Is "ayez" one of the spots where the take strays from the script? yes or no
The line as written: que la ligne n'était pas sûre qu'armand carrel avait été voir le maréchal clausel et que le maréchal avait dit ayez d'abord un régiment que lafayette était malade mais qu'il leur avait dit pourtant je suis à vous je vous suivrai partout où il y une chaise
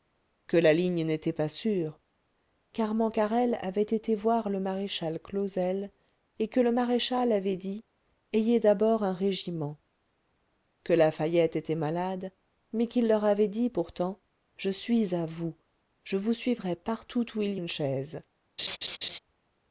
no